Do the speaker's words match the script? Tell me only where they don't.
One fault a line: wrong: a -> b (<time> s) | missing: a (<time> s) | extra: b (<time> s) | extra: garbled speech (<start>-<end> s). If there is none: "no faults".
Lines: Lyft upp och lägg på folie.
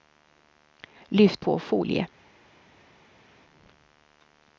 missing: upp och lägg (1.4 s)